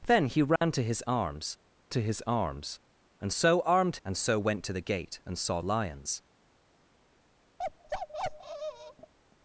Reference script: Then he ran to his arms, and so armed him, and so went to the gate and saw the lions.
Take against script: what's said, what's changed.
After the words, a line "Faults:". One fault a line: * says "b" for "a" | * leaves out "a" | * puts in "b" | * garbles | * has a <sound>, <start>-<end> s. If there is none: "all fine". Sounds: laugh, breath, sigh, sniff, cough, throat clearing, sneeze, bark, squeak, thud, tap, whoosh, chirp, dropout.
Then he ran to his arms to his arms, and so armed and so went to the gate and saw lions.
Faults:
* has a dropout, 0.6-0.6 s
* puts in "to his arms"
* leaves out "him"
* leaves out "the"
* has a bark, 7.6-9.1 s